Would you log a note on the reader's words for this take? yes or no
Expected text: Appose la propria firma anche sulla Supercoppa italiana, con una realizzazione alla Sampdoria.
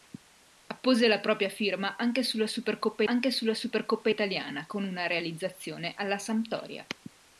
yes